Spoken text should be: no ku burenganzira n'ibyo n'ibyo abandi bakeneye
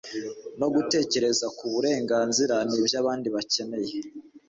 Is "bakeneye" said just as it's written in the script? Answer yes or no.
yes